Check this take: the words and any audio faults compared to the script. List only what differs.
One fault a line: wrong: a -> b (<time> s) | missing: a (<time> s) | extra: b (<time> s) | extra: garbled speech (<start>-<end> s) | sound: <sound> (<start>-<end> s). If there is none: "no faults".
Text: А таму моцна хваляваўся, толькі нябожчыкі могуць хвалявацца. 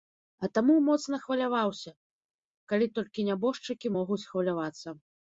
extra: калі (2.7 s)